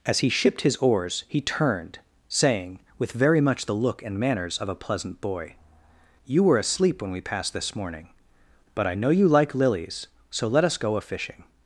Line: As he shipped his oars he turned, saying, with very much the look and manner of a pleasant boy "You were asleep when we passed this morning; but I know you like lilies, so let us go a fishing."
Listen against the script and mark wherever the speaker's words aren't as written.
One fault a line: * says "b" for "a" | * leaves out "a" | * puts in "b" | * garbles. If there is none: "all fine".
* says "manners" for "manner"